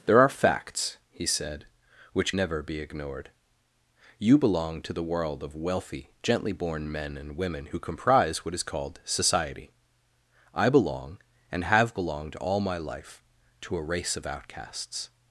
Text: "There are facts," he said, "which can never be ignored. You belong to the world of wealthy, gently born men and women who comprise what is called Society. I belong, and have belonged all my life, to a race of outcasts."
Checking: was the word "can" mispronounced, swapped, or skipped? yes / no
yes